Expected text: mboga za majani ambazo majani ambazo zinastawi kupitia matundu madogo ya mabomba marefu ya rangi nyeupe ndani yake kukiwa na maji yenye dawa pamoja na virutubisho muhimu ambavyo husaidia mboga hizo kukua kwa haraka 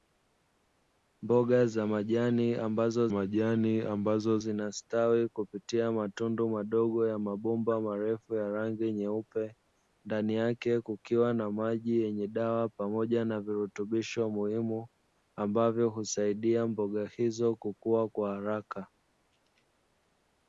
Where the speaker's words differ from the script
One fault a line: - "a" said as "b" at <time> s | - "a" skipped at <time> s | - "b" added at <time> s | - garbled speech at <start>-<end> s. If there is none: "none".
none